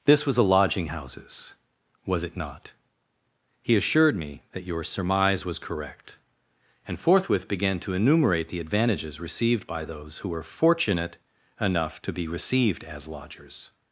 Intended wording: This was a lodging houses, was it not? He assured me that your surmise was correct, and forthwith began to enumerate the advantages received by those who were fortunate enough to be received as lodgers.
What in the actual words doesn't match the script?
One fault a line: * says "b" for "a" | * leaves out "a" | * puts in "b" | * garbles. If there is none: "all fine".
all fine